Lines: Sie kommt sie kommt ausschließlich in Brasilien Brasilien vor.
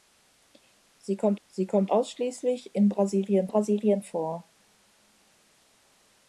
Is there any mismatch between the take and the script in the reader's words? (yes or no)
no